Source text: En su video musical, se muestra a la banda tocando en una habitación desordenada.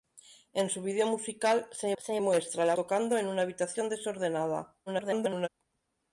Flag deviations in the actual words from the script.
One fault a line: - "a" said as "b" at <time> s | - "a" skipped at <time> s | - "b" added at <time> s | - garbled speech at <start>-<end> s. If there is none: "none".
- "se" added at 2.0 s
- "banda" skipped at 2.7 s
- garbled speech at 4.9-5.5 s